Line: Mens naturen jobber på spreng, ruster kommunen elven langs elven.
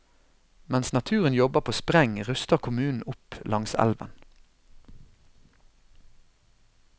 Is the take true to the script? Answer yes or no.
no